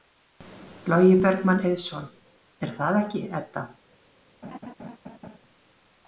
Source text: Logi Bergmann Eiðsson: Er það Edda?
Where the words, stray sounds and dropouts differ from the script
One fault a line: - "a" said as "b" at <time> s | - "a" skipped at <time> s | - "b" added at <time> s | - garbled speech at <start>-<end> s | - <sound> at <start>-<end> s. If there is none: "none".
- "ekki" added at 3.1 s
- laugh at 4.4-5.4 s